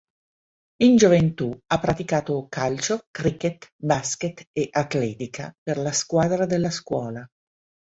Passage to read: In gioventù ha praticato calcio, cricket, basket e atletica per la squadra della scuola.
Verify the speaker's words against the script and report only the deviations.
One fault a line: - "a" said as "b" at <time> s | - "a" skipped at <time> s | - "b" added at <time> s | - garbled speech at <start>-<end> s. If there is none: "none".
none